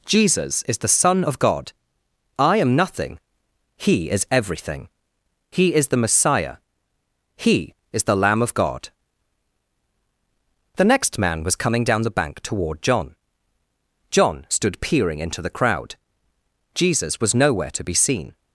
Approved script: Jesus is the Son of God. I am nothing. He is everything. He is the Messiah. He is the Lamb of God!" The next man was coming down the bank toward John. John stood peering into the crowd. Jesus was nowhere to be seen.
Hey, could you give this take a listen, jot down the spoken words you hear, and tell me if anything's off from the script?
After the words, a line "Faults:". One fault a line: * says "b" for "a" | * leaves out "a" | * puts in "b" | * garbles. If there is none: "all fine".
Jesus is the Son of God. I am nothing. He is everything. He is the Messiah. He is the Lamb of God!" The next man was coming down the bank toward John. John stood peering into the crowd. Jesus was nowhere to be seen.
Faults:
all fine